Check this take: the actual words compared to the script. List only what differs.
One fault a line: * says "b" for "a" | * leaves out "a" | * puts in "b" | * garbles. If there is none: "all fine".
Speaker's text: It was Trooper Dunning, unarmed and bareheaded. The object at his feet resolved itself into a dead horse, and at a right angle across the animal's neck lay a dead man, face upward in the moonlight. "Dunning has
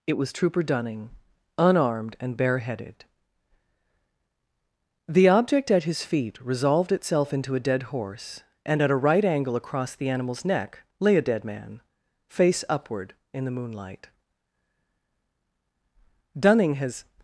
all fine